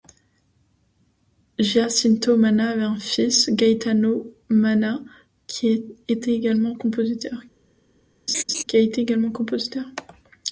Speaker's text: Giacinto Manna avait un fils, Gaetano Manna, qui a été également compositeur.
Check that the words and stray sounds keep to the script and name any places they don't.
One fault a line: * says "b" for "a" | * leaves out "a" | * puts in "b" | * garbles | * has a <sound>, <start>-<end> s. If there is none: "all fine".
* has a laugh, 8.3-8.6 s